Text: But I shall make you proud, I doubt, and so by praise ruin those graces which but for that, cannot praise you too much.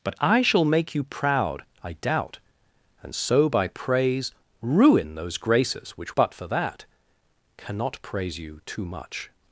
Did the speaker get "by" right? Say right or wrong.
right